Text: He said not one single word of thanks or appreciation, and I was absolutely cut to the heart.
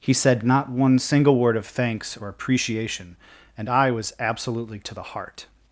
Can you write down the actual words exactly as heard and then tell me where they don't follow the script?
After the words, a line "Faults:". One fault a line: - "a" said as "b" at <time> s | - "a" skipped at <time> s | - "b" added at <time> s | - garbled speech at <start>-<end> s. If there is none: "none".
He said not one single word of thanks or appreciation, and I was absolutely to the heart.
Faults:
- "cut" skipped at 4.8 s